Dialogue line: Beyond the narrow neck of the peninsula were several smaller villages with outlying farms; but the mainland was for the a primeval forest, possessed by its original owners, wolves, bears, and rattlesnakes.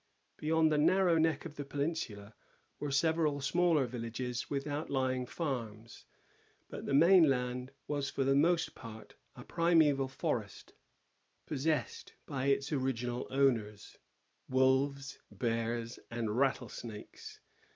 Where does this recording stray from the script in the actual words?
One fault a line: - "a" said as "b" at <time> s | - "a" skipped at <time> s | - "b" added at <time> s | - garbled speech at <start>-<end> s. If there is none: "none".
- "most part" added at 8.4 s